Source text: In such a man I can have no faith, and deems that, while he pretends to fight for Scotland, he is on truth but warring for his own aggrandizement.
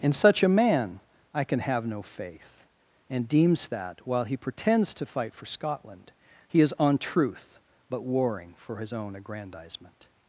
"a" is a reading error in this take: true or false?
false